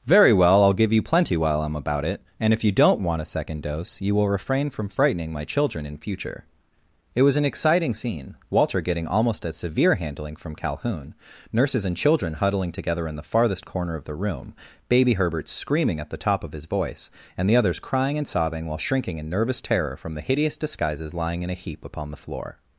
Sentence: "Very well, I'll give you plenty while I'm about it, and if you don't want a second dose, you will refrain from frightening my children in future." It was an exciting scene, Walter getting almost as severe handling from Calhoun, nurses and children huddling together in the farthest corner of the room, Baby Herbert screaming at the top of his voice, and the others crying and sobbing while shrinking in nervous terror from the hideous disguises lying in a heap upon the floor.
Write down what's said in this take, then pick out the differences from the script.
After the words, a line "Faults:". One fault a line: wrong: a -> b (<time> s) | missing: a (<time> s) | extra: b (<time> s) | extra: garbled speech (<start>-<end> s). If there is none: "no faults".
"Very well, I'll give you plenty while I'm about it, and if you don't want a second dose, you will refrain from frightening my children in future." It was an exciting scene, Walter getting almost as severe handling from Calhoun, nurses and children huddling together in the farthest corner of the room, Baby Herbert screaming at the top of his voice, and the others crying and sobbing while shrinking in nervous terror from the hideous disguises lying in a heap upon the floor.
Faults:
no faults